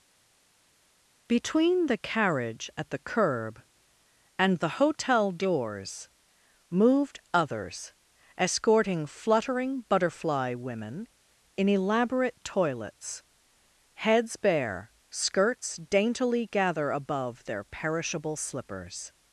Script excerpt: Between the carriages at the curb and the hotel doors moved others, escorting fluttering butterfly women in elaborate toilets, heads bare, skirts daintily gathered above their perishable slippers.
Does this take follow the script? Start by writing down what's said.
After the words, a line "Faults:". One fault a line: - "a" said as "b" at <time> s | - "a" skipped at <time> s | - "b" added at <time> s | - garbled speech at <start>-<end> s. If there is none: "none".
Between the carriage at the curb and the hotel doors moved others, escorting fluttering butterfly women in elaborate toilets, heads bare, skirts daintily gather above their perishable slippers.
Faults:
- "carriages" said as "carriage" at 2.0 s
- "gathered" said as "gather" at 16.5 s